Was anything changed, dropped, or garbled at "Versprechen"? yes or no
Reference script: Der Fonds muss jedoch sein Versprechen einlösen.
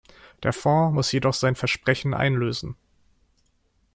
no